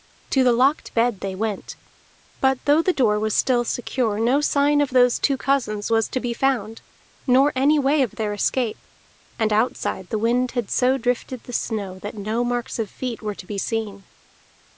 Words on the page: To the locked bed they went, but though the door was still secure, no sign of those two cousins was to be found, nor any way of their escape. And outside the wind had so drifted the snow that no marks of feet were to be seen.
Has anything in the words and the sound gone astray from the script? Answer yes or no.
no